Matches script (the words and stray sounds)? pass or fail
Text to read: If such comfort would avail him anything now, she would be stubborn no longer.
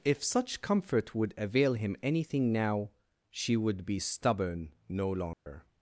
fail